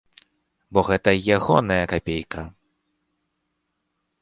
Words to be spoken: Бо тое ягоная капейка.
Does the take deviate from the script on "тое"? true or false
true